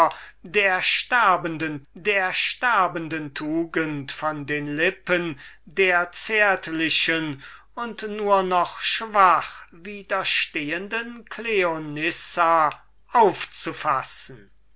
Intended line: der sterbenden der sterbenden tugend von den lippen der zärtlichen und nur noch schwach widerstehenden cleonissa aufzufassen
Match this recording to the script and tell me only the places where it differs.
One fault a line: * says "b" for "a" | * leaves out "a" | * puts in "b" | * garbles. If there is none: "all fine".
all fine